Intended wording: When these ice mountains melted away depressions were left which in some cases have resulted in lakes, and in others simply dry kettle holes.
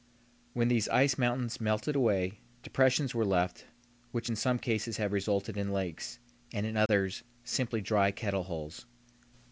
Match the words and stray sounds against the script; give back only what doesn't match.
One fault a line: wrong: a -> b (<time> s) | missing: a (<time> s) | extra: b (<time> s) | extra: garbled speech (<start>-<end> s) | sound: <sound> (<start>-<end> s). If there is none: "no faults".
sound: dropout (6.9-6.9 s)